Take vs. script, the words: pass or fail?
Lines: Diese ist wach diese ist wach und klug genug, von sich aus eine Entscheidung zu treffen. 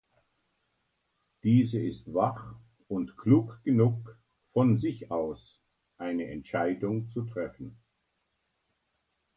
fail